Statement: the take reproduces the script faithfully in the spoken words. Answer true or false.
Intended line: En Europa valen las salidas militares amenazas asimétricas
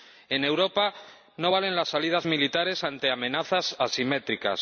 false